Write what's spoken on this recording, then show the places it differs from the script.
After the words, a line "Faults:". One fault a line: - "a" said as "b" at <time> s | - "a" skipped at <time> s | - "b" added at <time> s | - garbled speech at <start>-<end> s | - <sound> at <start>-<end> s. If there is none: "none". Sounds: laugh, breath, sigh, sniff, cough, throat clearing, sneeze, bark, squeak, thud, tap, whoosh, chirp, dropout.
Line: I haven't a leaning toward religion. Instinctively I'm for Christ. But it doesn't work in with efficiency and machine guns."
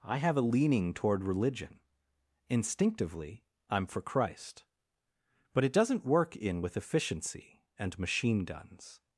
I have a leaning toward religion. Instinctively I'm for Christ. But it doesn't work in with efficiency and machine guns."
Faults:
- "haven't" said as "have" at 0.2 s